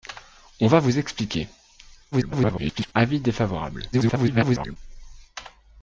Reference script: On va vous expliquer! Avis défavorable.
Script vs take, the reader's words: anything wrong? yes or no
yes